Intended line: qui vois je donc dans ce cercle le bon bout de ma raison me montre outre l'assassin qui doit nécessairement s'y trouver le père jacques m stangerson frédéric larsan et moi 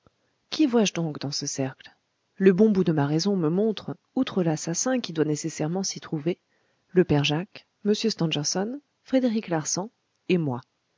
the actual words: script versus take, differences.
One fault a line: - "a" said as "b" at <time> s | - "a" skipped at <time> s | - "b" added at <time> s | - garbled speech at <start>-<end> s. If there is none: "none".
none